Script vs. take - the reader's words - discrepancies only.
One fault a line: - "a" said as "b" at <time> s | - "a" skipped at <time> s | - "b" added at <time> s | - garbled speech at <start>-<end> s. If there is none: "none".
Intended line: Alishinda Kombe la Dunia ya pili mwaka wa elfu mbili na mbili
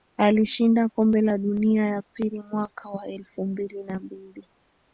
none